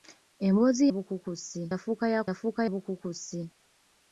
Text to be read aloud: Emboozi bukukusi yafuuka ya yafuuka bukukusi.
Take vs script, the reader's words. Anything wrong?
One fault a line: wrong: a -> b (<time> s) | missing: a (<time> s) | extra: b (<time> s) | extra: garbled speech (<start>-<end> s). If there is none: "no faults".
no faults